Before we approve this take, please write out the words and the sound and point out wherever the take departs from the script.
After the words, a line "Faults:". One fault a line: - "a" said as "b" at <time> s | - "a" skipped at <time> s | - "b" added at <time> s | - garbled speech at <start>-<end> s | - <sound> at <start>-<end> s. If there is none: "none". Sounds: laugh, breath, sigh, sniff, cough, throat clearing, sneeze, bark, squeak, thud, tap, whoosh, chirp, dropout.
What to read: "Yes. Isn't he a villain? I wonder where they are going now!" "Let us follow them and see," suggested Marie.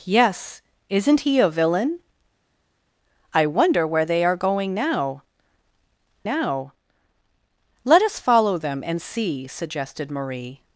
"Yes. Isn't he a villain? I wonder where they are going now now!" "Let us follow them and see," suggested Marie.
Faults:
- "now" added at 6.2 s